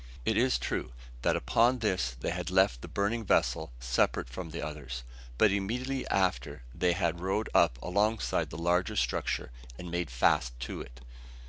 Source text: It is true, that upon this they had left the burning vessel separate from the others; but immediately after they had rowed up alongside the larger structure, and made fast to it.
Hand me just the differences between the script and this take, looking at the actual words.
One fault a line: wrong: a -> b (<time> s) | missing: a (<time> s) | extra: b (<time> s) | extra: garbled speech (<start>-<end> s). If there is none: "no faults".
no faults